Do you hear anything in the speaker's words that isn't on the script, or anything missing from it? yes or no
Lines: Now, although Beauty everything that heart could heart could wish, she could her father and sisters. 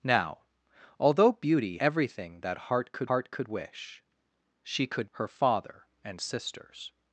no